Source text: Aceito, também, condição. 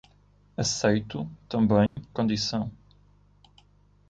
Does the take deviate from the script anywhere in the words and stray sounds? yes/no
yes